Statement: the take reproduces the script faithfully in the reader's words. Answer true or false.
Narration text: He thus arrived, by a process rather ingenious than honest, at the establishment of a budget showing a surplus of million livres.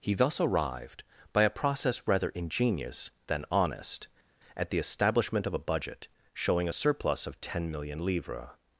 false